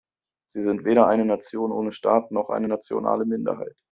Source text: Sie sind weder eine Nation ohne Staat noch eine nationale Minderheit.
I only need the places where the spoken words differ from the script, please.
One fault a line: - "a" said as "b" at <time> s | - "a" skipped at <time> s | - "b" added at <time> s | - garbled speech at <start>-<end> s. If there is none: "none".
none